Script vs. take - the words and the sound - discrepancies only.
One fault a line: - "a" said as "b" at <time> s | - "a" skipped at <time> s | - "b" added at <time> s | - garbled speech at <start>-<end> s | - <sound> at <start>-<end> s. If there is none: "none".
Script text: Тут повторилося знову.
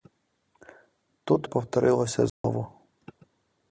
- dropout at 2.3-2.4 s